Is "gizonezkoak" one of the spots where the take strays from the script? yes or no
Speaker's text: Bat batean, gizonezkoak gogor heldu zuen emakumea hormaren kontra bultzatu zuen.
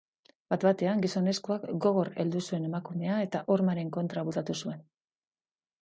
no